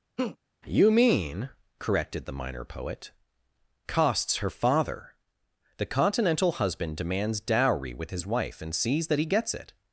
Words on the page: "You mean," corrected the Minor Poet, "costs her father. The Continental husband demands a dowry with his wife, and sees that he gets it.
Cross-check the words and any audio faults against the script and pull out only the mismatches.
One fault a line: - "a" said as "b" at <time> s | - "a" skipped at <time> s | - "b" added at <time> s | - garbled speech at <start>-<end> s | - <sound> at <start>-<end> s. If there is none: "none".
- laugh at 0.2-0.4 s
- "a" skipped at 7.4 s